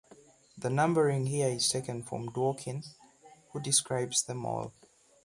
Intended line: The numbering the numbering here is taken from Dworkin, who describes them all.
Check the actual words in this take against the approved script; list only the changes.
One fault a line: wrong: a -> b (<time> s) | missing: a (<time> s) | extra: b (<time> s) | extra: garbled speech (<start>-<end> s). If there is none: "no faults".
missing: the numbering (1.3 s)